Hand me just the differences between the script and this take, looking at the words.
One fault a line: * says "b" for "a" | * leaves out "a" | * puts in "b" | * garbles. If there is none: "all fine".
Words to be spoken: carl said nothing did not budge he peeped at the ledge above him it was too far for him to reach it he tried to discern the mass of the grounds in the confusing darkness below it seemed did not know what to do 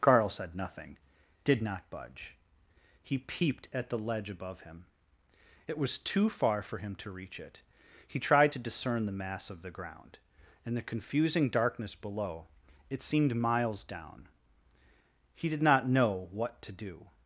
* says "ground" for "grounds"
* puts in "miles down he"